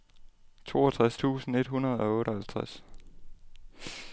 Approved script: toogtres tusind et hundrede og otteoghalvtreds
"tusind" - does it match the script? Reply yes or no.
yes